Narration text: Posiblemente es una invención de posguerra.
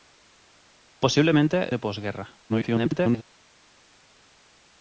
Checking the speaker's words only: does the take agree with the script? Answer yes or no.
no